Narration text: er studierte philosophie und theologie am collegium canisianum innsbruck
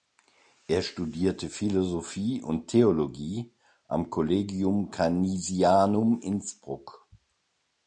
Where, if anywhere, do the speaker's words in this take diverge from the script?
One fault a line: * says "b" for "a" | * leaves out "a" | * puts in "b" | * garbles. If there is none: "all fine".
all fine